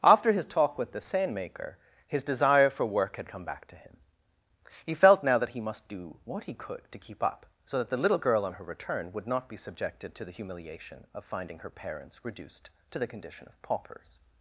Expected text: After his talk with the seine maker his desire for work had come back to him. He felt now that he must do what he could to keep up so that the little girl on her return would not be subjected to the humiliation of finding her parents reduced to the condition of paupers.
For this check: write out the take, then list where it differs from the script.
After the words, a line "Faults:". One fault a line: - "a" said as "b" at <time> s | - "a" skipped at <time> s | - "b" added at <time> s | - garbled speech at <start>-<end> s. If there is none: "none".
After his talk with the seine maker his desire for work had come back to him. He felt now that he must do what he could to keep up so that the little girl on her return would not be subjected to the humiliation of finding her parents reduced to the condition of paupers.
Faults:
none